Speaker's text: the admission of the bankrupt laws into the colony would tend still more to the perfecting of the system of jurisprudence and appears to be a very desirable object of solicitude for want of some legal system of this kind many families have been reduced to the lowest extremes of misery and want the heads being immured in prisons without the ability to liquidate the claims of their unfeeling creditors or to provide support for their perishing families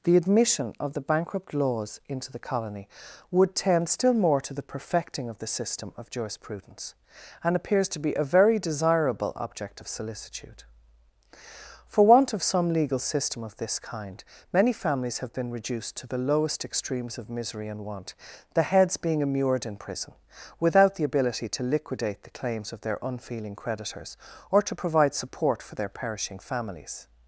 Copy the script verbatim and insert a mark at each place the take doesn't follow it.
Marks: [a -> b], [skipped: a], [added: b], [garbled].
the admission of the bankrupt laws into the colony would tend still more to the perfecting of the system of jurisprudence and appears to be a very desirable object of solicitude for want of some legal system of this kind many families have been reduced to the lowest extremes of misery and want the heads being immured in [prisons -> prison] without the ability to liquidate the claims of their unfeeling creditors or to provide support for their perishing families